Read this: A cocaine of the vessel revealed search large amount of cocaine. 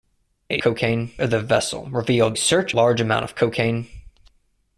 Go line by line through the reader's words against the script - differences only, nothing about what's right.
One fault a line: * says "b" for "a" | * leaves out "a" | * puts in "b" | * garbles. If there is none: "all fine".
all fine